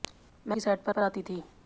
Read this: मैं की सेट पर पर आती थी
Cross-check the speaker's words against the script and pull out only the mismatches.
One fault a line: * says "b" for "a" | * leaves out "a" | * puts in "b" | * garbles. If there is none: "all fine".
all fine